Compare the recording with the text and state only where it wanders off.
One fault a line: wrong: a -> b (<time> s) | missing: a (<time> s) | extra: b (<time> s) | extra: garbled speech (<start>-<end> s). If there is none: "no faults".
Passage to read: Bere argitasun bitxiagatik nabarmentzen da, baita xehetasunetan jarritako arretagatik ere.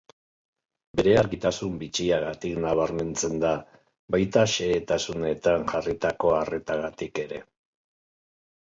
no faults